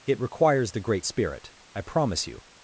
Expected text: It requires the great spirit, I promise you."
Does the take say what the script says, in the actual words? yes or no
yes